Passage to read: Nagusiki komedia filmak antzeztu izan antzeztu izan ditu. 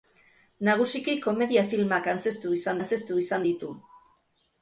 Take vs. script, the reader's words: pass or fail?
pass